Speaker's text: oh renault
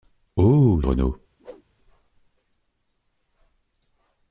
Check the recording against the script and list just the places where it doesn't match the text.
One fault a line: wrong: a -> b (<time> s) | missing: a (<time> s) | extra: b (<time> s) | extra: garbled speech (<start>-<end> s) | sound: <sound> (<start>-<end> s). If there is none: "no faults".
sound: whoosh (1.4-1.6 s)